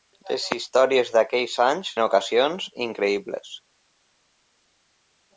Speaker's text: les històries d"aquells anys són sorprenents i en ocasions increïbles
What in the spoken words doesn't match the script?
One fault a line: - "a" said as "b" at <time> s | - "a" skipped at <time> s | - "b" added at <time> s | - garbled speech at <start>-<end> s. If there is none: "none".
- "són sorprenents i" skipped at 1.9 s